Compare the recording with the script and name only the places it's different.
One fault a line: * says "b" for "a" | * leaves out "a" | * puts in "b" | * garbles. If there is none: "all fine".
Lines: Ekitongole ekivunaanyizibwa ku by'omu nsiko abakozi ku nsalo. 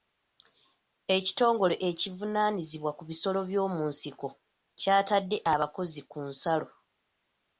* puts in "bisolo"
* puts in "kyatadde"